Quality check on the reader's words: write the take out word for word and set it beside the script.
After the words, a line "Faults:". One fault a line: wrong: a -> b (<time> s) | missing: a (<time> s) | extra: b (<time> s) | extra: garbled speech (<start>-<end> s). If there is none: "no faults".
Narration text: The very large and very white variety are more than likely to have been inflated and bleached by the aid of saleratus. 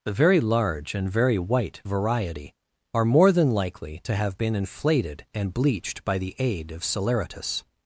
The very large and very white variety are more than likely to have been inflated and bleached by the aid of saleratus.
Faults:
no faults